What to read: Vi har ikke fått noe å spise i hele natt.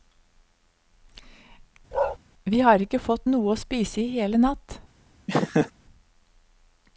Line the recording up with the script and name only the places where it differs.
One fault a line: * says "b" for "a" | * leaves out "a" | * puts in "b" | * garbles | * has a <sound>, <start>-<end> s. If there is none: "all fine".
* has a bark, 1.9-2.2 s
* has a laugh, 5.3-5.7 s